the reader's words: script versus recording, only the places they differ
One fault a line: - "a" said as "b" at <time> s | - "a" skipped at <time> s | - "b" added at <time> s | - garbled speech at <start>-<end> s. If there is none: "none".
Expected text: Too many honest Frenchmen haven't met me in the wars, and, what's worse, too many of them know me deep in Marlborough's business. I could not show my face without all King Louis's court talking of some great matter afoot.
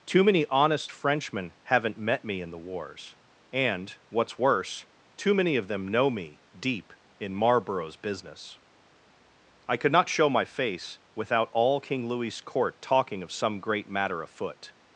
none